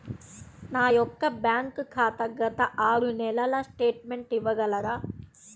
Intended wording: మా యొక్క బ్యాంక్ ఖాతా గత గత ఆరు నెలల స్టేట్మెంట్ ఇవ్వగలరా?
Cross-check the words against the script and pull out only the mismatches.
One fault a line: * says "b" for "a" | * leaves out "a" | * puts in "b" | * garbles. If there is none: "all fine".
* says "నా" for "మా"
* leaves out "గత"